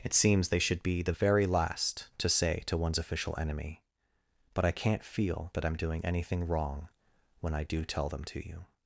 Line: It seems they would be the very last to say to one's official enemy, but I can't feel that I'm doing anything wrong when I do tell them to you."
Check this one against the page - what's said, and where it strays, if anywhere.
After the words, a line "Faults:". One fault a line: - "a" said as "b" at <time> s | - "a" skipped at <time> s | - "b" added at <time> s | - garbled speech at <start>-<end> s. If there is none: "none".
It seems they should be the very last to say to one's official enemy, but I can't feel that I'm doing anything wrong when I do tell them to you."
Faults:
- "would" said as "should" at 0.6 s